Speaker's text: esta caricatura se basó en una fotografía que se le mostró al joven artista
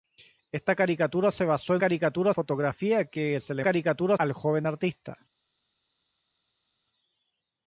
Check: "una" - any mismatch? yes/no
yes